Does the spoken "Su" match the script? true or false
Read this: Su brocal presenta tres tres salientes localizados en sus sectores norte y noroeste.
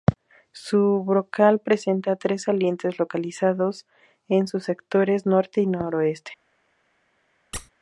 true